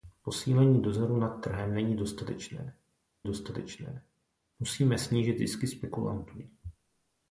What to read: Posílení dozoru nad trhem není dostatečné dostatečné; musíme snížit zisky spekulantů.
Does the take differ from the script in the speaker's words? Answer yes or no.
no